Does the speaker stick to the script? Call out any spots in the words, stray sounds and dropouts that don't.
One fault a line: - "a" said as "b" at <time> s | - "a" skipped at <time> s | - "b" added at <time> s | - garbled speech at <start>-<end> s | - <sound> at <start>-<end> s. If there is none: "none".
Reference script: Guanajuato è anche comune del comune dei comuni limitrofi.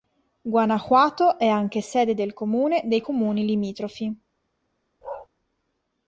- "comune" said as "sede" at 1.8 s
- bark at 5.0-5.3 s